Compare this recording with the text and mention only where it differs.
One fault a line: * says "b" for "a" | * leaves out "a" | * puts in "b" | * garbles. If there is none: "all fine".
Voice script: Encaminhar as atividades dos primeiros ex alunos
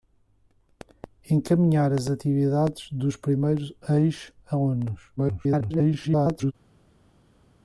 * garbles